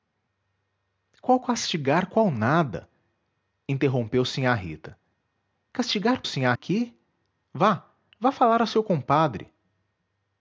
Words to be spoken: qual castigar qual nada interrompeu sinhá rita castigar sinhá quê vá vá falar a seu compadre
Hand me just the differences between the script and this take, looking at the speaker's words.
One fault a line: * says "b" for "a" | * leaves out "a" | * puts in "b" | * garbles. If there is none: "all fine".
all fine